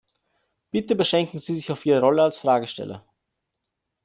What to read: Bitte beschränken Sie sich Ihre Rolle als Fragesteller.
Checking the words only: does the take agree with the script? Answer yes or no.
no